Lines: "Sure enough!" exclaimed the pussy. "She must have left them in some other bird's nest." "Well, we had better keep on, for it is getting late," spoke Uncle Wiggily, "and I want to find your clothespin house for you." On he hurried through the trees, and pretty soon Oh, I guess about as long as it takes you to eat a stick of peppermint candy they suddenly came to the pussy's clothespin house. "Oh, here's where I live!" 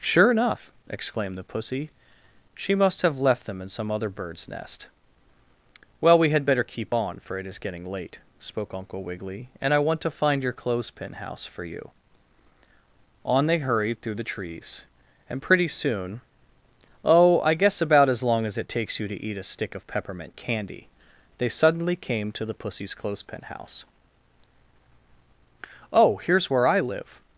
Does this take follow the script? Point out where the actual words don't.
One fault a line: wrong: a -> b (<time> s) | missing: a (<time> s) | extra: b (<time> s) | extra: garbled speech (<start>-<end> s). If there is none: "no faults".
wrong: he -> they (13.5 s)